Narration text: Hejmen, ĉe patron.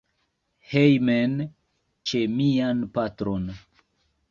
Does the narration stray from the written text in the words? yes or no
yes